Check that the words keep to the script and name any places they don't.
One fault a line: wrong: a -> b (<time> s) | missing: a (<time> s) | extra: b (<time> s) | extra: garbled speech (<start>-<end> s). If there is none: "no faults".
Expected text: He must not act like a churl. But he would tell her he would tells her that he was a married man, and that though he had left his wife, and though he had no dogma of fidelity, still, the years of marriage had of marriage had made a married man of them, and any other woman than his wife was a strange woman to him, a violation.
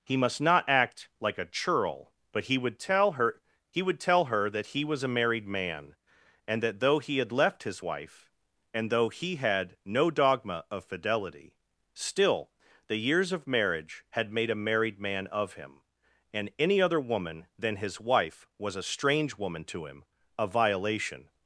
wrong: tells -> tell (4.0 s)
missing: of marriage had (14.3 s)
wrong: them -> him (15.5 s)